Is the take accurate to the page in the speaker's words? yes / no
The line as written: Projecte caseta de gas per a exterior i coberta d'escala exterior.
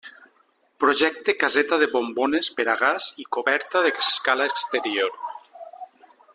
no